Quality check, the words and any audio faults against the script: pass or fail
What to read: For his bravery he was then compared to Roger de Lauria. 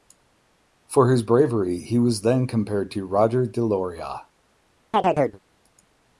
fail